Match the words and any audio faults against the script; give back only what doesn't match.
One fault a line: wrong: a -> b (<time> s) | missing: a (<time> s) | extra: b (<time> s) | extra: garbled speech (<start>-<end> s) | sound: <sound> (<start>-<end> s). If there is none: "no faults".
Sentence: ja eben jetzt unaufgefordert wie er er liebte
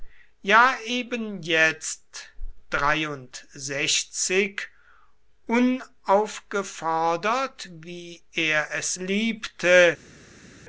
wrong: er -> es (8.7 s)